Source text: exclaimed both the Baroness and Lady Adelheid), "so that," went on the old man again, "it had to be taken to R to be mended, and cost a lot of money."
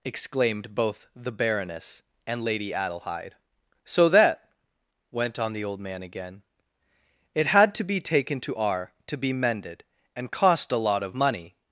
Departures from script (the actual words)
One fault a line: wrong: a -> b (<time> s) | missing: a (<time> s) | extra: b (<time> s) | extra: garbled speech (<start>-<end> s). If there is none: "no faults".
no faults